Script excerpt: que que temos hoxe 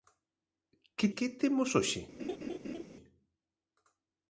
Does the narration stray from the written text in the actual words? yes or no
no